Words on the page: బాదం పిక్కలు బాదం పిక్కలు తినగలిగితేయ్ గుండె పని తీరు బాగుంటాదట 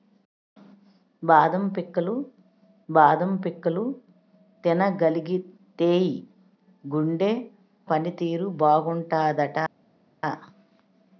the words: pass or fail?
pass